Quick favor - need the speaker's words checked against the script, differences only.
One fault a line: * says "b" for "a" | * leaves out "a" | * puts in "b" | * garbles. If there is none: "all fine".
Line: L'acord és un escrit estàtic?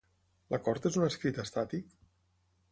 all fine